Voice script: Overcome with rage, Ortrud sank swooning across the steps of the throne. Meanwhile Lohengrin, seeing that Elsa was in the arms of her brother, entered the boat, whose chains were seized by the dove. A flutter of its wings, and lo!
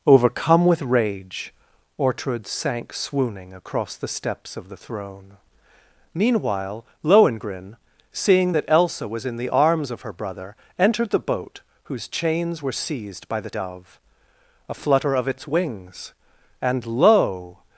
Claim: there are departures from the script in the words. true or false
false